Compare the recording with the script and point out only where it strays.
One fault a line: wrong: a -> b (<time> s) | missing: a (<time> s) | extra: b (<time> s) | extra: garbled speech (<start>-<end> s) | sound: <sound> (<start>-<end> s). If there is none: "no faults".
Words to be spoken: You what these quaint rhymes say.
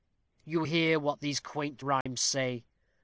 extra: hear (0.6 s)
sound: dropout (2.0-2.1 s)